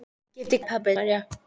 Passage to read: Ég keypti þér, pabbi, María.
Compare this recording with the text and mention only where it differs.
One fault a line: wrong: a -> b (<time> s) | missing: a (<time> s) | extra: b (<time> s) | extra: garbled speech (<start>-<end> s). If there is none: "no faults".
no faults